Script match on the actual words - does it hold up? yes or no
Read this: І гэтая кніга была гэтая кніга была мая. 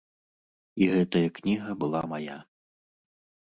no